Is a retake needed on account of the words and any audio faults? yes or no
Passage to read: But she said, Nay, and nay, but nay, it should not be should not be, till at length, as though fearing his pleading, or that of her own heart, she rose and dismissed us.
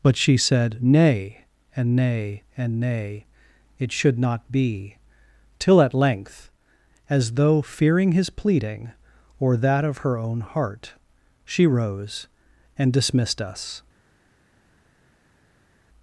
yes